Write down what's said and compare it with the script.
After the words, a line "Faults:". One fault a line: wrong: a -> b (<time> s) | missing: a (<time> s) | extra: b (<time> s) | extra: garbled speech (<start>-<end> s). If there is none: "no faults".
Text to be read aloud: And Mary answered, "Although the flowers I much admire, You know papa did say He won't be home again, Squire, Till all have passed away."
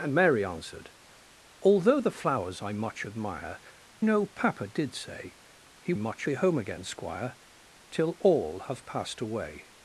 And Mary answered, "Although the flowers I much admire, Know papa did say He much be home again, Squire, Till all have passed away."
Faults:
missing: You (3.6 s)
wrong: won't -> much (6.0 s)